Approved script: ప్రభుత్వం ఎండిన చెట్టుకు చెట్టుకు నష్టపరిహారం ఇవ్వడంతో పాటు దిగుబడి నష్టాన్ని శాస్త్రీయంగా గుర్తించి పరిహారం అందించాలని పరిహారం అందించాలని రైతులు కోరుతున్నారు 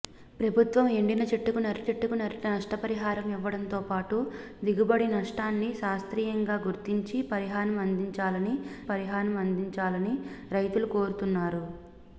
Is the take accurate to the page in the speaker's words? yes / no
yes